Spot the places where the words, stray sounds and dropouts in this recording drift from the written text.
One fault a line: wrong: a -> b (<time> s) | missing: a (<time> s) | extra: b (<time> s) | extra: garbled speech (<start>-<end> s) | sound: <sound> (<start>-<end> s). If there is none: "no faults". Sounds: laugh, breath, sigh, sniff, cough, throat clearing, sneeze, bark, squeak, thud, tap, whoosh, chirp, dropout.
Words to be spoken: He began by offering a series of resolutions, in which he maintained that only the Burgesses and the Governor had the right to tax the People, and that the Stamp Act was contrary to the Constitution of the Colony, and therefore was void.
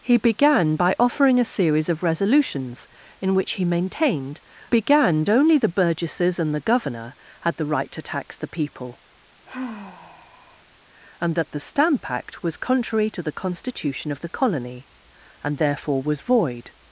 wrong: that -> began (4.7 s)
sound: sigh (9.5-10.6 s)